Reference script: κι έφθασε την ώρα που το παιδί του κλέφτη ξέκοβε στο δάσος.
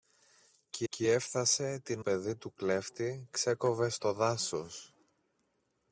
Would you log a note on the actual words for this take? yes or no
yes